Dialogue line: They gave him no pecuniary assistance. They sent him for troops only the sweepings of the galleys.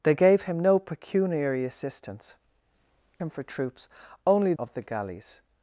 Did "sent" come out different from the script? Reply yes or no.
yes